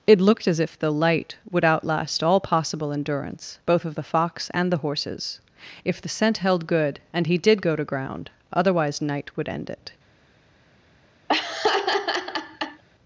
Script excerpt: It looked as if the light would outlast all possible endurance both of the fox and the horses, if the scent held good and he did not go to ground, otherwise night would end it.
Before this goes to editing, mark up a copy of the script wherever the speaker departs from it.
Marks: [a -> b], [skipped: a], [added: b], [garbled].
It looked as if the light would outlast all possible endurance both of the fox and the horses, if the scent held good and he did [skipped: not] go to ground, otherwise night would end it.